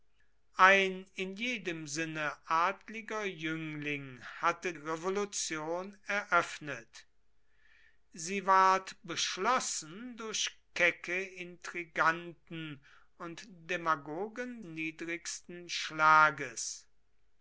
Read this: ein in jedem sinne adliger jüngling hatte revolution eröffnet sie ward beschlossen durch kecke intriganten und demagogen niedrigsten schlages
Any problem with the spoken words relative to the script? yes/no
no